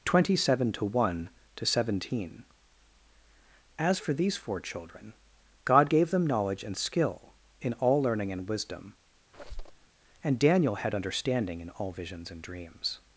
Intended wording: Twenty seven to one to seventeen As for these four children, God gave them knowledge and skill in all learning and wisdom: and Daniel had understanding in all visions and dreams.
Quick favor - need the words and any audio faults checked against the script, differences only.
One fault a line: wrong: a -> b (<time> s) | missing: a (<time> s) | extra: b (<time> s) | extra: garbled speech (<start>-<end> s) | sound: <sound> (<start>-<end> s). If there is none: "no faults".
sound: squeak (9.3-9.9 s)